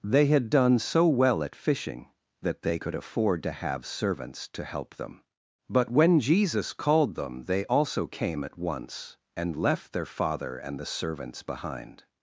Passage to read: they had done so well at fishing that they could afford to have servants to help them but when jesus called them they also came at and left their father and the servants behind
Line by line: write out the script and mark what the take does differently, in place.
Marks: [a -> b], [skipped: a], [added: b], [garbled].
they had done so well at fishing that they could afford to have servants to help them but when jesus called them they also came at [added: once] and left their father and the servants behind